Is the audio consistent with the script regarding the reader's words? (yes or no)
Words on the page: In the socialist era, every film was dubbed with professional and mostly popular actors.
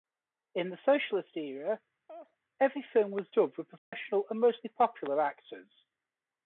yes